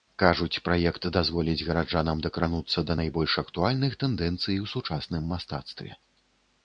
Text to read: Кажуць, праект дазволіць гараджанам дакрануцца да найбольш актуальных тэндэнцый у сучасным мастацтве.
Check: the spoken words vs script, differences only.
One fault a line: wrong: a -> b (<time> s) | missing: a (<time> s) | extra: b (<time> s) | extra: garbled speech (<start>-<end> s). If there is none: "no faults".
no faults